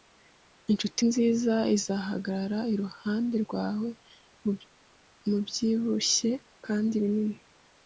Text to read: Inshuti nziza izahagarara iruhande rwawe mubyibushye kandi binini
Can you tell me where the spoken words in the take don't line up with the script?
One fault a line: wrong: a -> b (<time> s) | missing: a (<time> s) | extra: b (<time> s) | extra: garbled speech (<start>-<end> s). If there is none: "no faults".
no faults